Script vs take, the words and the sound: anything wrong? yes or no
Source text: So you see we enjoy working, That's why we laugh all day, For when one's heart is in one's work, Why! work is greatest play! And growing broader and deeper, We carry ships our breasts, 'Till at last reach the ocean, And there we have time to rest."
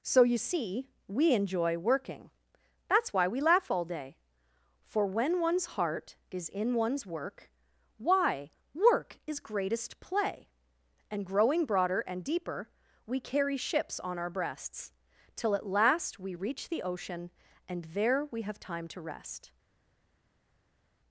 yes